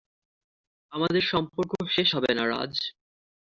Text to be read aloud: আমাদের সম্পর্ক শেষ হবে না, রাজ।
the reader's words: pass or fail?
pass